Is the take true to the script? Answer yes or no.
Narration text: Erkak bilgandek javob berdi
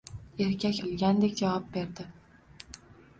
yes